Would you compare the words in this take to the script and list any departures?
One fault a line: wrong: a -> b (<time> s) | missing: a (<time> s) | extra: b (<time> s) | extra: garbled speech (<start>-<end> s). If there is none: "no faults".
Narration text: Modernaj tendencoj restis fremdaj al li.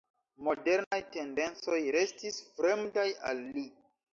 no faults